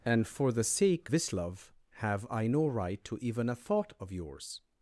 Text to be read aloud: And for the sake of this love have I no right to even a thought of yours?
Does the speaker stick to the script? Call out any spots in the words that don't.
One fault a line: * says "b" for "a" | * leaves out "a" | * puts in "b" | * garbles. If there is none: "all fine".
* leaves out "of"